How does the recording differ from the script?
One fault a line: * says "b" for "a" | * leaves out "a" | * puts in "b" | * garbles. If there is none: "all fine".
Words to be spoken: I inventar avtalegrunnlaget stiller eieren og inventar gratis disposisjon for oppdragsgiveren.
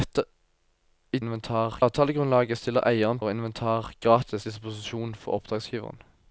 all fine